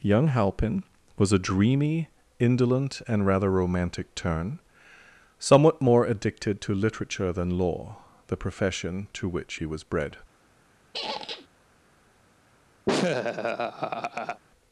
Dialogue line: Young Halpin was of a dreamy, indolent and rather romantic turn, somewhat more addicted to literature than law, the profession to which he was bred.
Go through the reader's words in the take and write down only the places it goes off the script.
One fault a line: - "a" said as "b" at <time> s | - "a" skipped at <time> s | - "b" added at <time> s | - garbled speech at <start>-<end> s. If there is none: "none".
- "of" skipped at 1.3 s